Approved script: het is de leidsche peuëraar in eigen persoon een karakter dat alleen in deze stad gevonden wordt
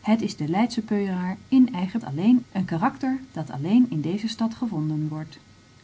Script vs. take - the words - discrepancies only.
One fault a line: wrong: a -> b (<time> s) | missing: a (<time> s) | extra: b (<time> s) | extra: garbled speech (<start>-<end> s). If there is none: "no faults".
wrong: persoon -> alleen (2.0 s)